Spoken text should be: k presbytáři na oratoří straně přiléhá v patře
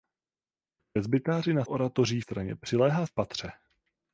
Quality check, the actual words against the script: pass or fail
pass